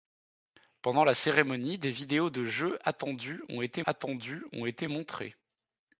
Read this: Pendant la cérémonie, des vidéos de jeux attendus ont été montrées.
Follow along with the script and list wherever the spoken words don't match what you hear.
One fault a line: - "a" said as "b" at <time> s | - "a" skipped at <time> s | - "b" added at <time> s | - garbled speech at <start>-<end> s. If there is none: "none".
- "attendus ont été" added at 3.8 s